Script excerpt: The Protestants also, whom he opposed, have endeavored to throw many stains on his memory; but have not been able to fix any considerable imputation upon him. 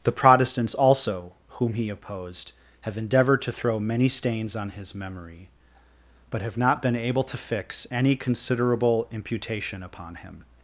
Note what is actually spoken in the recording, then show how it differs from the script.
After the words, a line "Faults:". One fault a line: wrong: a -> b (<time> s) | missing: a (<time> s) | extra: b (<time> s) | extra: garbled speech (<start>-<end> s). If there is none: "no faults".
The Protestants also, whom he opposed, have endeavored to throw many stains on his memory; but have not been able to fix any considerable imputation upon him.
Faults:
no faults